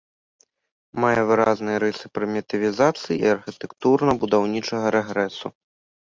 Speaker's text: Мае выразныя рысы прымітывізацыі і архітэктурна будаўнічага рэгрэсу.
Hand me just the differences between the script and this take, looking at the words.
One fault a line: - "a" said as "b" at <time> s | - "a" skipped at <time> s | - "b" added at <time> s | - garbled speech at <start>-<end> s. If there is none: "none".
none